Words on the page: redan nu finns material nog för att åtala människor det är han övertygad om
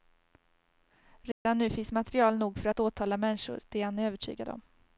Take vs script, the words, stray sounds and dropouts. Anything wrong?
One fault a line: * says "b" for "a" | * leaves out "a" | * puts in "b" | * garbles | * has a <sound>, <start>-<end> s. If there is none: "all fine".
* has a dropout, 1.3-1.5 s